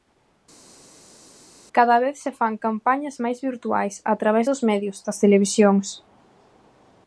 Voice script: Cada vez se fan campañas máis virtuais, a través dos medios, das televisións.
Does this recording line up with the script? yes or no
yes